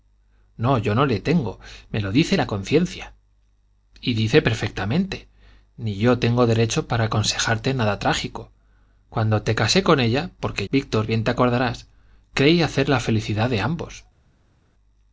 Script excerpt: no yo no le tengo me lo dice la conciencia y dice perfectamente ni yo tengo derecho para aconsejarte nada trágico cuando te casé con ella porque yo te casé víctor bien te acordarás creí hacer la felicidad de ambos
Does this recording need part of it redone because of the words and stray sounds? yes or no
yes